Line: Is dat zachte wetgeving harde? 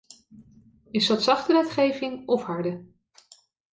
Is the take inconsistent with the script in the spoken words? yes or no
yes